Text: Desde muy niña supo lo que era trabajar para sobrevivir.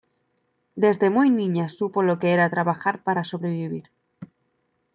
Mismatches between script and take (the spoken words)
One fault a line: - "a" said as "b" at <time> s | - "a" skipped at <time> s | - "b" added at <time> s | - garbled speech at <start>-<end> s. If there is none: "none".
none